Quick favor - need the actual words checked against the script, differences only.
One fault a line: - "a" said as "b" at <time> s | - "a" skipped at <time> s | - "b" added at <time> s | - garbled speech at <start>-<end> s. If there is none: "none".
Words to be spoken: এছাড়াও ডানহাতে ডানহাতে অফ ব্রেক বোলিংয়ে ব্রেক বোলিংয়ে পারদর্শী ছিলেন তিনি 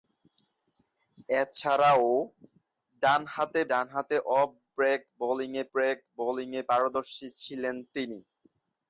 none